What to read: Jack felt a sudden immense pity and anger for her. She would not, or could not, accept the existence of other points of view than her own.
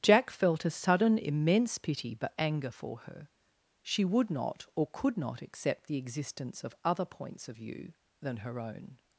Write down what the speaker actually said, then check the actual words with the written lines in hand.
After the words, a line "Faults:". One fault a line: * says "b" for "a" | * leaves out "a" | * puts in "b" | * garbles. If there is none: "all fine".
Jack felt a sudden immense pity but anger for her. She would not, or could not, accept the existence of other points of view than her own.
Faults:
* says "but" for "and"